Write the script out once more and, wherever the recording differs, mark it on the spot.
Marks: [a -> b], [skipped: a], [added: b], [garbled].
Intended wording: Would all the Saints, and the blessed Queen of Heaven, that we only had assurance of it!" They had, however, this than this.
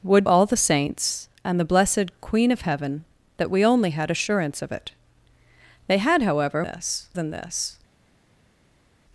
Would all the Saints, and the blessed Queen of Heaven, that we only had assurance of it!" They had, however, this than this.